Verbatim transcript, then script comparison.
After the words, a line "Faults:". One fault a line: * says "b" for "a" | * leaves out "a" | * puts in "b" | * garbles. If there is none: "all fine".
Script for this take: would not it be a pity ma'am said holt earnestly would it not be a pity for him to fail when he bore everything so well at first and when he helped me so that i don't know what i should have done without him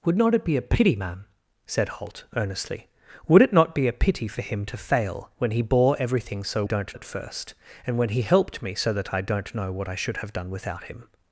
would not it be a pity ma'am said holt earnestly would it not be a pity for him to fail when he bore everything so don't at first and when he helped me so that i don't know what i should have done without him
Faults:
* says "don't" for "well"